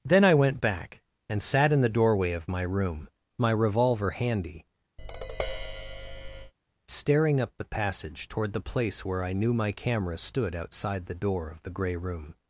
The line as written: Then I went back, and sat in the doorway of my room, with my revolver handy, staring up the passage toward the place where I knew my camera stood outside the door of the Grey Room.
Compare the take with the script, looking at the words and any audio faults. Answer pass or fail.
fail